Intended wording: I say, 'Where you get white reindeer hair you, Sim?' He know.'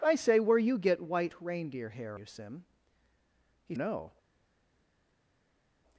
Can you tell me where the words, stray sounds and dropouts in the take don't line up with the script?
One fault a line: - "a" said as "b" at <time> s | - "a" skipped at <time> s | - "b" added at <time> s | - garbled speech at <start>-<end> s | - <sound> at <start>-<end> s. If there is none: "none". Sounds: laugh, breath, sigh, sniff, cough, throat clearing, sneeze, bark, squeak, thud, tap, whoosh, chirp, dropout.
none